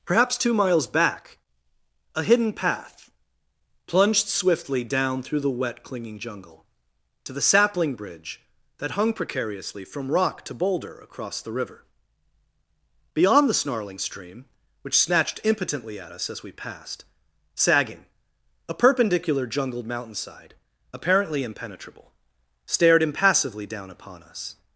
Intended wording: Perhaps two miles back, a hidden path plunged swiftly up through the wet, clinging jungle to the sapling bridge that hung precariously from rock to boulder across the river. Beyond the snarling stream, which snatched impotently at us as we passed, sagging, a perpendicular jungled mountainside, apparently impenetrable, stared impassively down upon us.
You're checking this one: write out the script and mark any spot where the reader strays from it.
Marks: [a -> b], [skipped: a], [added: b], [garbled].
Perhaps two miles back, a hidden path plunged swiftly [up -> down] through the wet, clinging jungle to the sapling bridge that hung precariously from rock to boulder across the river. Beyond the snarling stream, which snatched impotently at us as we passed, sagging, a perpendicular jungled mountainside, apparently impenetrable, stared impassively down upon us.